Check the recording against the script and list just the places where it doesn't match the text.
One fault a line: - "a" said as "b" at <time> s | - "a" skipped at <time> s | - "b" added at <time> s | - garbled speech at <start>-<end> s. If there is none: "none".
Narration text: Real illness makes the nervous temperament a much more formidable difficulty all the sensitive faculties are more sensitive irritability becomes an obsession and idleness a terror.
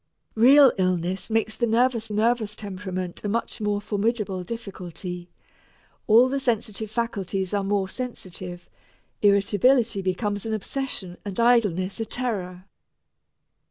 - "nervous" added at 2.1 s